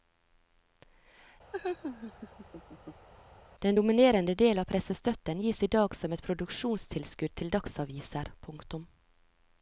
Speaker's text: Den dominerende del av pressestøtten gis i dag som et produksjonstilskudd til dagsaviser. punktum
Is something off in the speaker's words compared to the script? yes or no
no